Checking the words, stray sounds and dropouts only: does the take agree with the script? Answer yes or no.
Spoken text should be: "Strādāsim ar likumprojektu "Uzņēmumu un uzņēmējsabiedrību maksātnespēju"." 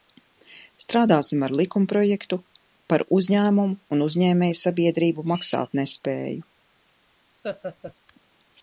no